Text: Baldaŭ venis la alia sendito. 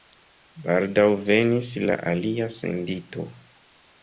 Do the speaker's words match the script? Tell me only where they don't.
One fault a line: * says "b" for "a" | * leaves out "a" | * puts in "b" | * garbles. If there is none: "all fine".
all fine